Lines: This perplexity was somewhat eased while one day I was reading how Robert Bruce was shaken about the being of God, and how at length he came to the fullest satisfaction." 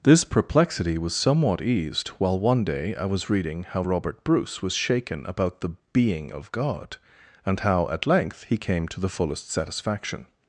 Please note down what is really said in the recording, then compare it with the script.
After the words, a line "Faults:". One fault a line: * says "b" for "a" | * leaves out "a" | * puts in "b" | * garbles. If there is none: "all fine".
This perplexity was somewhat eased while one day I was reading how Robert Bruce was shaken about the being of God, and how at length he came to the fullest satisfaction."
Faults:
all fine